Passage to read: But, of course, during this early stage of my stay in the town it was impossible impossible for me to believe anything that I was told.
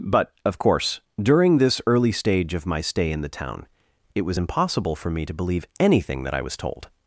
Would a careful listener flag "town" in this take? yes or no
no